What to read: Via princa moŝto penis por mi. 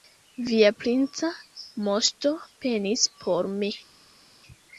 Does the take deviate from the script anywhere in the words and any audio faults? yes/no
no